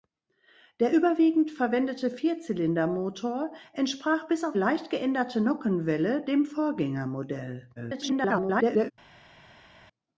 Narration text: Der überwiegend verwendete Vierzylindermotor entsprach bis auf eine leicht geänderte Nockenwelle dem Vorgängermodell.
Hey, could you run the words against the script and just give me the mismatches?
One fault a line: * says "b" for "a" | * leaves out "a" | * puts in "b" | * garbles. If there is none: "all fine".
* leaves out "eine"
* garbles